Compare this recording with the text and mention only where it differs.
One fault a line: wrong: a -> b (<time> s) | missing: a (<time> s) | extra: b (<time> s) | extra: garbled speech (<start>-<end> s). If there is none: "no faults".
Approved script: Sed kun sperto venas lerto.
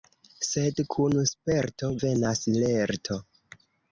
no faults